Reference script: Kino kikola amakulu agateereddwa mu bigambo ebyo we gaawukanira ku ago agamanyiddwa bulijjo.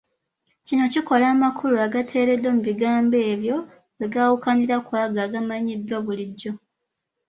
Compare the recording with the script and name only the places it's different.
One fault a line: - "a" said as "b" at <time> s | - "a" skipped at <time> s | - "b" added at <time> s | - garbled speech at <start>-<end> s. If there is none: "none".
none